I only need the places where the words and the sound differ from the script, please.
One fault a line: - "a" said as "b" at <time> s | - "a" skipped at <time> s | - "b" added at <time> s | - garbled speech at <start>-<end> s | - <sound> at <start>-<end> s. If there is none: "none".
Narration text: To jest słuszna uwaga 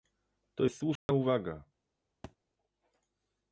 - dropout at 1.0-1.1 s
- thud at 2.2-2.4 s